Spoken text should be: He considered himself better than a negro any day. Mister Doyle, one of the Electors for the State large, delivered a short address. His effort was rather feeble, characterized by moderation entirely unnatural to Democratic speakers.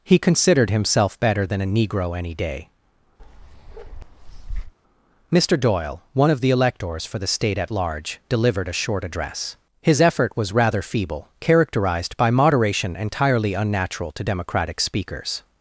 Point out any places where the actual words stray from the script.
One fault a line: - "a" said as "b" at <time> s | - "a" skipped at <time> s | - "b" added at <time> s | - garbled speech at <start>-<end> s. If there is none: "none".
- "at" added at 7.6 s